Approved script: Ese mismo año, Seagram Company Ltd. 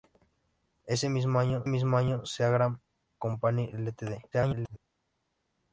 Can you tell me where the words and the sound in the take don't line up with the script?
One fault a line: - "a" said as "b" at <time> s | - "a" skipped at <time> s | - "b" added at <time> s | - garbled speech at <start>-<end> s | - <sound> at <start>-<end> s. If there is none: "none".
- "mismo año" added at 1.7 s
- garbled speech at 4.3-4.8 s